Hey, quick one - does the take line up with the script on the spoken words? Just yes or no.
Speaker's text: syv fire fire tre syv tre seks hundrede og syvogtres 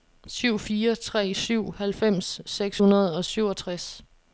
no